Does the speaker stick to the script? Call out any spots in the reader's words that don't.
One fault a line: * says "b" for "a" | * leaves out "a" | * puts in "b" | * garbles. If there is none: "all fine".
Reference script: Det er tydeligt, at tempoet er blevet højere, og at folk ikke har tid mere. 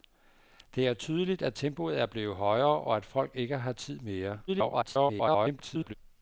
* garbles